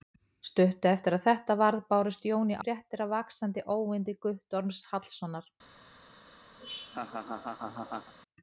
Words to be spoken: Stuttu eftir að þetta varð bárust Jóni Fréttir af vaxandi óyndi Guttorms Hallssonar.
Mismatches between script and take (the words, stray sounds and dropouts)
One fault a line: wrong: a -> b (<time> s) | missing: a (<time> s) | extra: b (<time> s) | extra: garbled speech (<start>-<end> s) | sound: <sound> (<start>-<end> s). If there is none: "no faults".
sound: laugh (6.6-8.1 s)